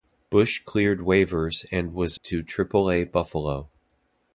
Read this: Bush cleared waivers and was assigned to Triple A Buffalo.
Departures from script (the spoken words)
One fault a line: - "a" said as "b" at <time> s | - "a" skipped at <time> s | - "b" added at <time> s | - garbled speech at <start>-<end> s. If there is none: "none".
- "assigned" skipped at 2.2 s